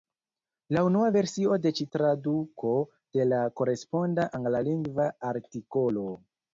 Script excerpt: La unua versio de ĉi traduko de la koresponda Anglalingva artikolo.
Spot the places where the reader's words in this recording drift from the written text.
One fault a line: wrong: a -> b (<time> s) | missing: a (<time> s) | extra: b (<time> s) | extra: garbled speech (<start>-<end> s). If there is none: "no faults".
no faults